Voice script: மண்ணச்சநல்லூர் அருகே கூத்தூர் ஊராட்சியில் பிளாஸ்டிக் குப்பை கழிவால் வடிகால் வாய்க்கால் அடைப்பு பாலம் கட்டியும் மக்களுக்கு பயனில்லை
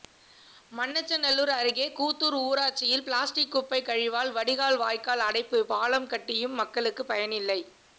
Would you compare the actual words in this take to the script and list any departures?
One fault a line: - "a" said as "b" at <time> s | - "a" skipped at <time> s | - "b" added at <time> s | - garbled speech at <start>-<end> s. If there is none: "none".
none